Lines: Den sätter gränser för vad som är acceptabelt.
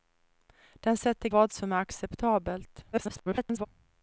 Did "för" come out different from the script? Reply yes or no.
yes